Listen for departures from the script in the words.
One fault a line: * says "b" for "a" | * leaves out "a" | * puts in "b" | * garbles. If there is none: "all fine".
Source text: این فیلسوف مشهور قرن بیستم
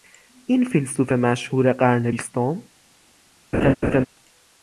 all fine